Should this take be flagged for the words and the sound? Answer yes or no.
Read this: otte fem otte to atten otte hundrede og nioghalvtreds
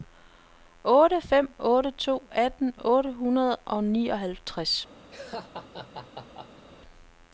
yes